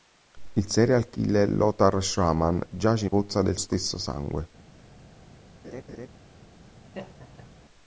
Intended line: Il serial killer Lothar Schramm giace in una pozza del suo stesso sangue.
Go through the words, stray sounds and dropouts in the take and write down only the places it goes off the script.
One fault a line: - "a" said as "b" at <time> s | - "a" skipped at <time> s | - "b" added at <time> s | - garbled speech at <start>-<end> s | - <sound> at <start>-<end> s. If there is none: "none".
- "una" skipped at 3.1 s
- "suo" skipped at 3.6 s
- laugh at 5.6-6.1 s
- laugh at 6.9-7.5 s